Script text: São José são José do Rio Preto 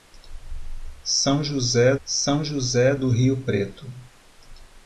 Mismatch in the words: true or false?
false